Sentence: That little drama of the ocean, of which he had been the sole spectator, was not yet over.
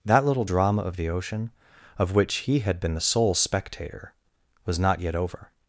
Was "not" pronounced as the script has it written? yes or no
yes